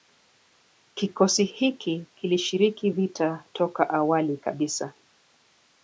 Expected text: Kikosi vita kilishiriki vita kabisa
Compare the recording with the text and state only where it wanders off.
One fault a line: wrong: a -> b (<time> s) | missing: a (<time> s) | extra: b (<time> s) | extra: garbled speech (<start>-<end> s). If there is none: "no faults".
wrong: vita -> hiki (1.4 s)
extra: toka awali (3.5 s)